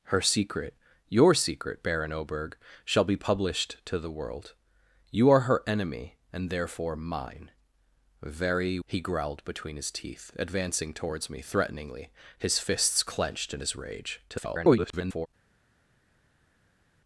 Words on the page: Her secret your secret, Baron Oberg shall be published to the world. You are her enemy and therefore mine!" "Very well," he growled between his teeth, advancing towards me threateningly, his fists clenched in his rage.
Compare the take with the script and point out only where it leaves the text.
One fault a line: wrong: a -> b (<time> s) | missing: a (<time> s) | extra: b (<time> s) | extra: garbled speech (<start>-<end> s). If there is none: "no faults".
missing: well (8.8 s)
extra: garbled speech (14.3-15.3 s)